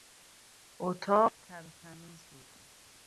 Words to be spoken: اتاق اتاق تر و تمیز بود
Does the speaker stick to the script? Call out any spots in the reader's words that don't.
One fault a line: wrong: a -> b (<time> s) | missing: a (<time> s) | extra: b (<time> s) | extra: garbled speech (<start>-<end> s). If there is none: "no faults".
missing: اتاق (1.3 s)